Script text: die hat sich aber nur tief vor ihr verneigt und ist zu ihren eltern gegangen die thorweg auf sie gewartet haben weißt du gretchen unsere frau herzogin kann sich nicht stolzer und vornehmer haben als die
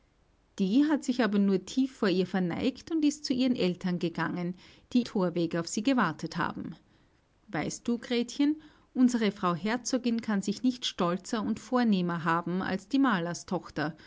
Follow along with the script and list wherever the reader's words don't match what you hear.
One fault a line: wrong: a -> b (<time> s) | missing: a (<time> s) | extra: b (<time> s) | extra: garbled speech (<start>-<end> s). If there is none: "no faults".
no faults